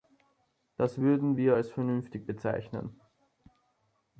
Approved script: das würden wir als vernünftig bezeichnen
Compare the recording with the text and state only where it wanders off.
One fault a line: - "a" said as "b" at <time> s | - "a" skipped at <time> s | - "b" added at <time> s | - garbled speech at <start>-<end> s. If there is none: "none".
none